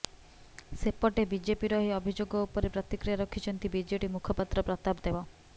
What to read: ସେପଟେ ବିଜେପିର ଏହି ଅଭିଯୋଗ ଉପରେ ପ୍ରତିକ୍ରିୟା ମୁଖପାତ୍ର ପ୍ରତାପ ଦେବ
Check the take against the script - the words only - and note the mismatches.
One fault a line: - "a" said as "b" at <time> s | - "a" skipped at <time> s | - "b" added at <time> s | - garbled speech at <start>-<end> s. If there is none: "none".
- "ରଖିଛନ୍ତି ବିଜେଡି" added at 3.2 s